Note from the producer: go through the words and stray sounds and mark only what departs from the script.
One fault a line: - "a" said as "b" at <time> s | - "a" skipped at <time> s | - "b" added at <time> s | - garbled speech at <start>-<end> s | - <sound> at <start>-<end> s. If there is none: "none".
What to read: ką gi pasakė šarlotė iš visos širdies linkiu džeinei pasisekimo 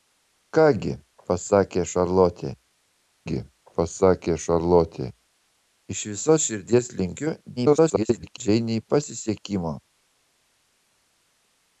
- "gi pasakė šarlotė" added at 3.3 s
- garbled speech at 7.6-8.4 s